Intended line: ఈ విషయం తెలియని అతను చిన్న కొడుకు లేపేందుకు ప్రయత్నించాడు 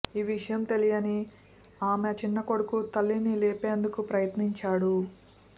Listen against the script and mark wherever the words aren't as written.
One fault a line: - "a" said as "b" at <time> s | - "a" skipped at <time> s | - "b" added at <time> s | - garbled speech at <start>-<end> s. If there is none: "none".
- "అతను" said as "ఆమె" at 1.8 s
- "తల్లిని" added at 3.0 s